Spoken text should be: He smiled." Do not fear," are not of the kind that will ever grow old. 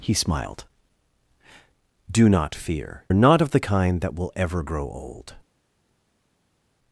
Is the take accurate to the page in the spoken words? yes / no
yes